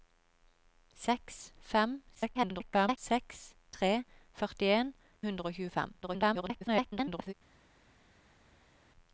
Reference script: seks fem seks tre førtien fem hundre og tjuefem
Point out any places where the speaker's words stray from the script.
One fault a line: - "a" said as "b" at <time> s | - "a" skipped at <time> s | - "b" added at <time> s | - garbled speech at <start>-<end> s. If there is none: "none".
- garbled speech at 2.1-3.0 s
- "fem" skipped at 4.9 s
- garbled speech at 6.0-7.3 s